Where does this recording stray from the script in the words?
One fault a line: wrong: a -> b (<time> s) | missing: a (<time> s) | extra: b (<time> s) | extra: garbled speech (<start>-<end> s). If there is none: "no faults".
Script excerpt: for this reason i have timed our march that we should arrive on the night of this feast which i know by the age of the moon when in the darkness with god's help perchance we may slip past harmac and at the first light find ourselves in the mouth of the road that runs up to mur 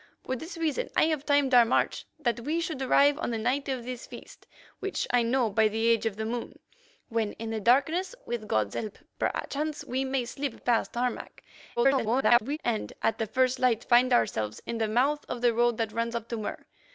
extra: garbled speech (11.8-12.6 s)